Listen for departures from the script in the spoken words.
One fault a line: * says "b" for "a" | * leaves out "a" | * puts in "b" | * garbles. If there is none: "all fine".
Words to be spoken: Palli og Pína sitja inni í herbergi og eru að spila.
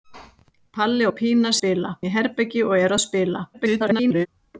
* says "spila" for "sitja"
* garbles